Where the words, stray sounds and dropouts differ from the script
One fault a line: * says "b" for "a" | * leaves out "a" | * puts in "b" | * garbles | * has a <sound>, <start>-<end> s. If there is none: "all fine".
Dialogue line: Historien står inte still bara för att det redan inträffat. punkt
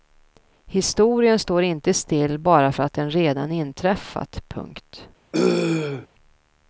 * says "den" for "det"
* has a throat clearing, 5.3-6.1 s